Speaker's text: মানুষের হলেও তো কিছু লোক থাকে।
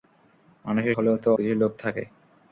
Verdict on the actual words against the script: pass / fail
pass